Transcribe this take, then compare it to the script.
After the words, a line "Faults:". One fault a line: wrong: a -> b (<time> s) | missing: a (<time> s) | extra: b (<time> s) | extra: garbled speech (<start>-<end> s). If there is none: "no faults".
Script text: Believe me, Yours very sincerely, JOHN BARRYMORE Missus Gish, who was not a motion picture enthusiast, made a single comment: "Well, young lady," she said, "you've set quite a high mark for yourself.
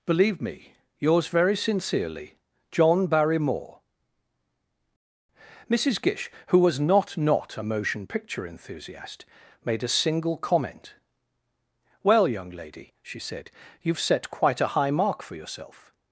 Believe me, Yours very sincerely, JOHN BARRYMORE Missus Gish, who was not not a motion picture enthusiast, made a single comment: "Well, young lady," she said, "you've set quite a high mark for yourself.
Faults:
extra: not (7.2 s)